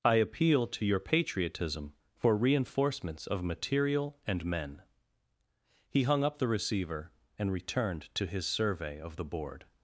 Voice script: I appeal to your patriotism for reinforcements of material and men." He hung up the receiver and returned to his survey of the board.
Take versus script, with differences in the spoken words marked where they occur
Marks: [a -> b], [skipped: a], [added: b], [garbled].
I appeal to your patriotism for reinforcements of material and men." He hung up the receiver and returned to his survey of the board.